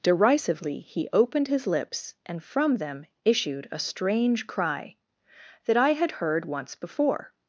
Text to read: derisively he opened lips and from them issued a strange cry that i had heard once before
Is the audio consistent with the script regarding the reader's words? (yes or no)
no